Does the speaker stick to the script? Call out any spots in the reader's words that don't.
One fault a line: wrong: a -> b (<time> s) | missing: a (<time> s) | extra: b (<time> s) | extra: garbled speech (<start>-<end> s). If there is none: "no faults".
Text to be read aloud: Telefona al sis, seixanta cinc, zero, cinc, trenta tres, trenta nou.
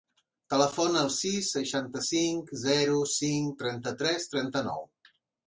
no faults